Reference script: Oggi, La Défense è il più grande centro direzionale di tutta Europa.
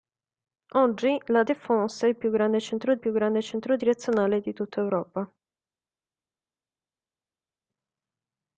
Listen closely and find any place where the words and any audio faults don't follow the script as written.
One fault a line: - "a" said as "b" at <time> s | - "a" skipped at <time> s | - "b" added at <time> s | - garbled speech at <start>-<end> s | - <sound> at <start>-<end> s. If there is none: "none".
- "più grande centro" added at 3.0 s